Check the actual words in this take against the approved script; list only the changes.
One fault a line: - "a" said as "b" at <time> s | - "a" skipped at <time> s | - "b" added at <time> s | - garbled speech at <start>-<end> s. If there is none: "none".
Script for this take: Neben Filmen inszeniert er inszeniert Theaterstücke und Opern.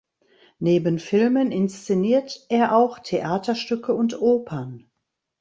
- "inszeniert" said as "auch" at 2.7 s